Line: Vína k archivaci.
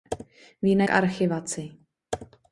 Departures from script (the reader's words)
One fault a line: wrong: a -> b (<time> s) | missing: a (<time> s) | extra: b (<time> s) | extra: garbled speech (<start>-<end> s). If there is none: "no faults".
no faults